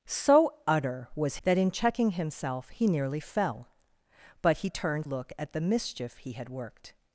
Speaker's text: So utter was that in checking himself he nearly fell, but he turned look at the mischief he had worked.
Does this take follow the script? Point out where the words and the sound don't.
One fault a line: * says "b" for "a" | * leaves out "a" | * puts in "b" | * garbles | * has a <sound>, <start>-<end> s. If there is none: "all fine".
all fine